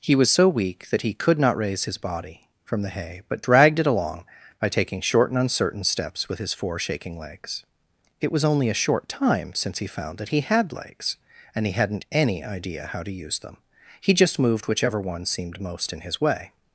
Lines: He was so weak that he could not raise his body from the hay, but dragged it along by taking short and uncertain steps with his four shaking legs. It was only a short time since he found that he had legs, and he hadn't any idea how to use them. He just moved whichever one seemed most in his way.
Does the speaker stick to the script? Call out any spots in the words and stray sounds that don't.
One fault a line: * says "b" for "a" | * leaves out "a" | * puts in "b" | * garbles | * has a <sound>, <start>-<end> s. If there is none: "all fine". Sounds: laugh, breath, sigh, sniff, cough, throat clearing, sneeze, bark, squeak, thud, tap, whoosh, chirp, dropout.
all fine